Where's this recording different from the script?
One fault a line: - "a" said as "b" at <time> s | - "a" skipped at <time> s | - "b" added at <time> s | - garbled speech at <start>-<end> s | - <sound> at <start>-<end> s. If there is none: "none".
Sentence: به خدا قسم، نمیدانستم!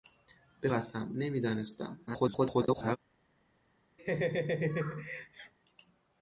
- "خدا" skipped at 0.7 s
- garbled speech at 2.1-3.0 s
- laugh at 4.0-5.5 s